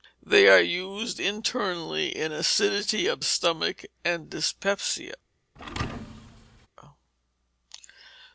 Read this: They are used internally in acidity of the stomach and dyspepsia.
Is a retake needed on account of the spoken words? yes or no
yes